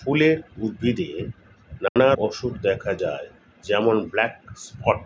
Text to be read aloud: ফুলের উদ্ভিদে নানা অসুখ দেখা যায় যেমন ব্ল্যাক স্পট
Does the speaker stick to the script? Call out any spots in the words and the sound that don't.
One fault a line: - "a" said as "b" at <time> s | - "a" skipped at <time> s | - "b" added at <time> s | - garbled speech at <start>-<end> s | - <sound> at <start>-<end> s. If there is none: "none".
- dropout at 1.9-2.0 s